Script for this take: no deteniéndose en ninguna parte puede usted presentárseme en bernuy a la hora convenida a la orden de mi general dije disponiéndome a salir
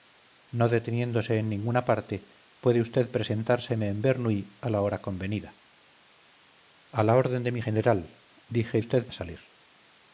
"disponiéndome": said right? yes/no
no